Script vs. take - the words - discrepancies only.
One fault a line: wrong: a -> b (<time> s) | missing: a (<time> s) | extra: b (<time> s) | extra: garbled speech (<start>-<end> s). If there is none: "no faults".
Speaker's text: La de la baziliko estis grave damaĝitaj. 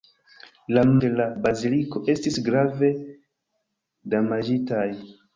no faults